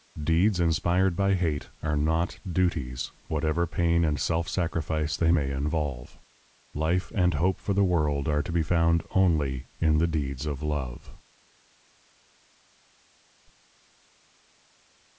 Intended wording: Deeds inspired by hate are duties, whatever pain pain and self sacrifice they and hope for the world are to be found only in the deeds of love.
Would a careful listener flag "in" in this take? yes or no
no